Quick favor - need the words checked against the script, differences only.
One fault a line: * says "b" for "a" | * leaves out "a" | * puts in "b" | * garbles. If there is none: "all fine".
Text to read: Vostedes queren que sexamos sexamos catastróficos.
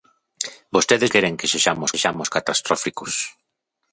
all fine